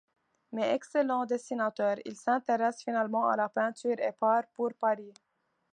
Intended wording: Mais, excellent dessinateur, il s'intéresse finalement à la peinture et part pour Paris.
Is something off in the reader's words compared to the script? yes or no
no